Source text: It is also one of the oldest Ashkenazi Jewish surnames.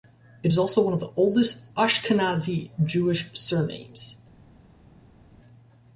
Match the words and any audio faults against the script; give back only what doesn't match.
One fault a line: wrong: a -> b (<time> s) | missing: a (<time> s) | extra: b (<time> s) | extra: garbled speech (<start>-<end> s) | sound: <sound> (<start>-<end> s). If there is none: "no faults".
no faults